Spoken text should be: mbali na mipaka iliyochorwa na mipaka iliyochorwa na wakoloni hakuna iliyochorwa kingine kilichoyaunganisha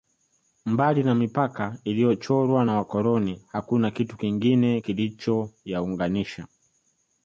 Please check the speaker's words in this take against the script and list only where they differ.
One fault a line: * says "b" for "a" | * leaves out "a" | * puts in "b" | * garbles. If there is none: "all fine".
* leaves out "mipaka iliyochorwa na"
* says "kitu" for "iliyochorwa"